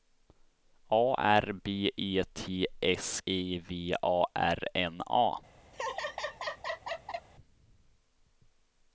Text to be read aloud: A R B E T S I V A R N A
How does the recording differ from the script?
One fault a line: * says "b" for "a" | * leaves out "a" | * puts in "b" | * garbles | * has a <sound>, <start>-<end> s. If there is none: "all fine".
* has a laugh, 5.7-7.3 s